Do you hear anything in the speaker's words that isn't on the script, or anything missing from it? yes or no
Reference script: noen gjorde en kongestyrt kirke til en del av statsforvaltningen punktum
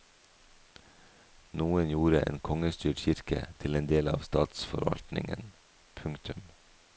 no